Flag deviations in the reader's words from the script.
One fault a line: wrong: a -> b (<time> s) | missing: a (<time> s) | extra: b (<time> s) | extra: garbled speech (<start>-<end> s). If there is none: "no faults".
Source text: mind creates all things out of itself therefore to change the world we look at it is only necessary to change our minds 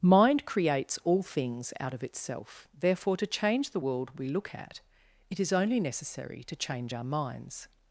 no faults